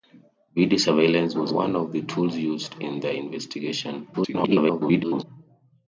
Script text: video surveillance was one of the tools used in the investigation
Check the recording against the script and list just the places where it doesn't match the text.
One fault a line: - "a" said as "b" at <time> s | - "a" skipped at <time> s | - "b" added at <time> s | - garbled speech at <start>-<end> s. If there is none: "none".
- garbled speech at 4.1-5.2 s